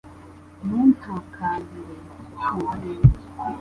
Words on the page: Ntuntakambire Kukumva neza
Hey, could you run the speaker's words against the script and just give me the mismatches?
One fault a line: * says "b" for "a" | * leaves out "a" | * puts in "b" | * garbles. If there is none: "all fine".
all fine